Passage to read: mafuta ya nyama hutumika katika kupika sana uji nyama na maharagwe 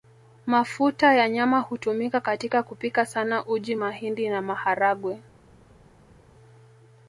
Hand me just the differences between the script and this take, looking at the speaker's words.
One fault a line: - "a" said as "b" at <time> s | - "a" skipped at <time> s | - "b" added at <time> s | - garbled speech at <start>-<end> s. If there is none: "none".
- "nyama" said as "mahindi" at 3.7 s